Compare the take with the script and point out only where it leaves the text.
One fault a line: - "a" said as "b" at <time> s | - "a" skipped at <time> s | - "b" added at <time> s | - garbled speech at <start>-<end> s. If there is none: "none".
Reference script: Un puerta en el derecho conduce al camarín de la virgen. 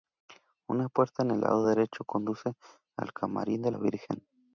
- "Un" said as "Una" at 0.7 s
- "lado" added at 1.4 s